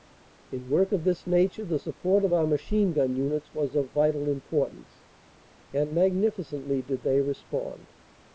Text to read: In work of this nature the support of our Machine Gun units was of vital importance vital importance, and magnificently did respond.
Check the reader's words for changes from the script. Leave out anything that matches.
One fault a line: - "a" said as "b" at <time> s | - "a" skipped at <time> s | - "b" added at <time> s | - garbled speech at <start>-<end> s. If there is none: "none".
- "vital importance" skipped at 5.1 s
- "they" added at 7.0 s